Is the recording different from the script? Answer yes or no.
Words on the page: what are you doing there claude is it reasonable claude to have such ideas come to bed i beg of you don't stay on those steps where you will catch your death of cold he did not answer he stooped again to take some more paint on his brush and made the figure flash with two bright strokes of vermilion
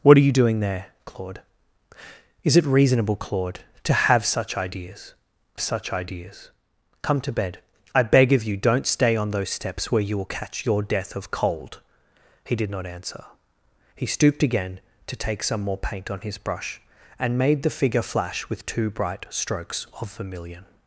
yes